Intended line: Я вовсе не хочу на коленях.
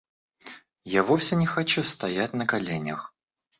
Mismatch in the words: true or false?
true